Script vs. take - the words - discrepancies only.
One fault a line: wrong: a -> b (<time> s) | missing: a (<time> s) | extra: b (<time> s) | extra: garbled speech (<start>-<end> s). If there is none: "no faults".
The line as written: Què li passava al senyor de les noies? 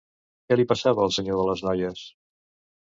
no faults